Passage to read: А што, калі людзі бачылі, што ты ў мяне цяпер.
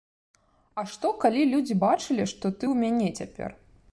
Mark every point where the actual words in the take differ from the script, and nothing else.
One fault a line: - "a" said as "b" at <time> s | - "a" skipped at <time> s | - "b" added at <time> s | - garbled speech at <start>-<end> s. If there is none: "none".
none